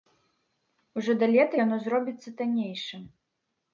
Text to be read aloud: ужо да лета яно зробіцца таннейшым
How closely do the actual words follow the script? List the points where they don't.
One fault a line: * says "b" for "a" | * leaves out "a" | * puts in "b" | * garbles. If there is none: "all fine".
all fine